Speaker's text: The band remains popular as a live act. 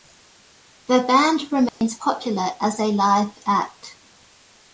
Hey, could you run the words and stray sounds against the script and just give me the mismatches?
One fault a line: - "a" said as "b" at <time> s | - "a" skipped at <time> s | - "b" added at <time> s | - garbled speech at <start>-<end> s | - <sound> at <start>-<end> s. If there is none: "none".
- dropout at 1.7-1.8 s